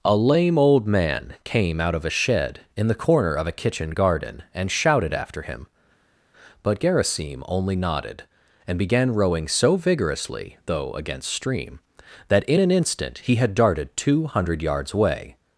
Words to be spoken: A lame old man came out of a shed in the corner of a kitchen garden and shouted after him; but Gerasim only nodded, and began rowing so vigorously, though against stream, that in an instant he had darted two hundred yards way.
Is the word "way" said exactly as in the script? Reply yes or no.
no